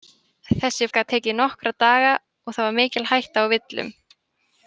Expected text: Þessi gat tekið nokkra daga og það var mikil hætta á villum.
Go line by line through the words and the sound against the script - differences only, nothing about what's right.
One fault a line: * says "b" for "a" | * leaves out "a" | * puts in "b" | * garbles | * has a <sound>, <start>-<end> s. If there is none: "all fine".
all fine